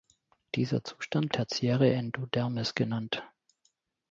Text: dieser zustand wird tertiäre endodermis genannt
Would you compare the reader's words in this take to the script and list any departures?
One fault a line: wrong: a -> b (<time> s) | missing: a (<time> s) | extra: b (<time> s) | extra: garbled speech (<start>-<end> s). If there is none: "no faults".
missing: wird (1.4 s)